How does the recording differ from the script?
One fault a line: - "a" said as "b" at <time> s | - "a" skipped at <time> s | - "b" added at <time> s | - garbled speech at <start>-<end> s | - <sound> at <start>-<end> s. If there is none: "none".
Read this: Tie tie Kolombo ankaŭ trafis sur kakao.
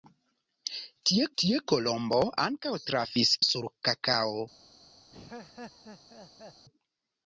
- laugh at 5.1-6.7 s